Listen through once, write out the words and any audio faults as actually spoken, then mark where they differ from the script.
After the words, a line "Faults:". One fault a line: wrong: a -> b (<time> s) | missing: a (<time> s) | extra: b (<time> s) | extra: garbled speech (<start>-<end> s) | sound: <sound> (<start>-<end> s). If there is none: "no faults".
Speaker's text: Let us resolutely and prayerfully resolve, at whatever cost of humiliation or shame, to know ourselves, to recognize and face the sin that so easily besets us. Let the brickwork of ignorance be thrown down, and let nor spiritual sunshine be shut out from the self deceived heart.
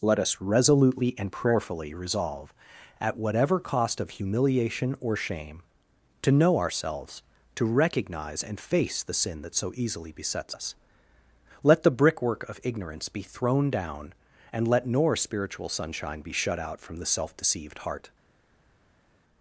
Let us resolutely and prayerfully resolve, at whatever cost of humiliation or shame, to know ourselves, to recognize and face the sin that so easily besets us. Let the brickwork of ignorance be thrown down, and let nor spiritual sunshine be shut out from the self deceived heart.
Faults:
no faults